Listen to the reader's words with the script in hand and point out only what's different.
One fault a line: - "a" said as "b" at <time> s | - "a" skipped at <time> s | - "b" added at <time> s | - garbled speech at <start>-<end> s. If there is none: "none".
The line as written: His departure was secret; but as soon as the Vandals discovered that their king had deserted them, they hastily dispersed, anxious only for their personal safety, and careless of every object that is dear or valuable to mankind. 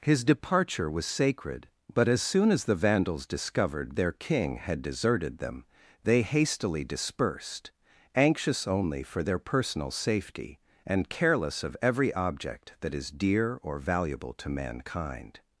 - "secret" said as "sacred" at 1.1 s
- "that" skipped at 4.0 s